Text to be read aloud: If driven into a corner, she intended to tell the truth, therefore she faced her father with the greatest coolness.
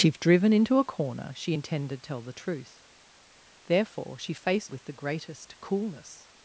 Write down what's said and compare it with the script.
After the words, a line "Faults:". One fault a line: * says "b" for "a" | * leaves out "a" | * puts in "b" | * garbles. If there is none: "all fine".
If driven into a corner, she intended tell the truth, therefore she faced with the greatest coolness.
Faults:
* leaves out "to"
* leaves out "her father"